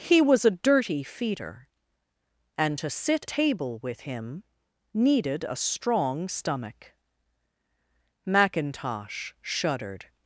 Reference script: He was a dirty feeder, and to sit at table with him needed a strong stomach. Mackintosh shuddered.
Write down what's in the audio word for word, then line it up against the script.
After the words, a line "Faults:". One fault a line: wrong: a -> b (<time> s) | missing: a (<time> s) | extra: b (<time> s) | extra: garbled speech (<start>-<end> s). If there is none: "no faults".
He was a dirty feeder, and to sit table with him needed a strong stomach. Mackintosh shuddered.
Faults:
missing: at (3.3 s)